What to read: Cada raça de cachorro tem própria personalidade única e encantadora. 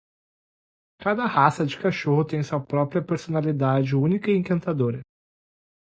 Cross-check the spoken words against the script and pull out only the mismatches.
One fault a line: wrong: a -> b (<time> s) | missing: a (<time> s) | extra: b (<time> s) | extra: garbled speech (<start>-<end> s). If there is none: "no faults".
extra: sua (2.4 s)